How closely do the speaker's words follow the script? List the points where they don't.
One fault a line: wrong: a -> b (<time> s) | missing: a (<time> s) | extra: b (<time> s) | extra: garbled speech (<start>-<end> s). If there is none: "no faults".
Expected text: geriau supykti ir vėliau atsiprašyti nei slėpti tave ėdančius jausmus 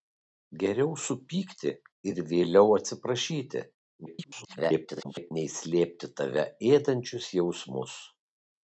extra: garbled speech (4.1-5.3 s)